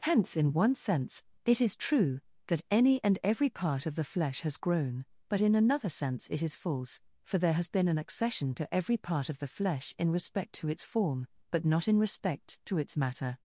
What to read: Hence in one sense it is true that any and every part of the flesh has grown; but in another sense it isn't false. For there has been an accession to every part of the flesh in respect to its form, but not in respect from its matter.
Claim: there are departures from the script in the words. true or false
true